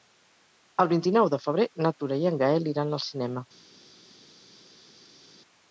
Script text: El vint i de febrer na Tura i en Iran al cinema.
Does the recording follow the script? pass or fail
fail